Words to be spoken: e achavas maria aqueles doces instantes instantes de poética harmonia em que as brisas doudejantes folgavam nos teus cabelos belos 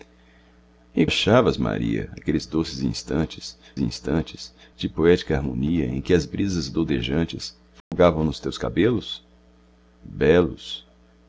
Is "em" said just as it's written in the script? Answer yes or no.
yes